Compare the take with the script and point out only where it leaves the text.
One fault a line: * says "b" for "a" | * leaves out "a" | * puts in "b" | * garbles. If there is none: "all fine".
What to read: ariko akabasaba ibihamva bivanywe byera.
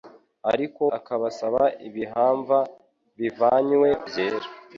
all fine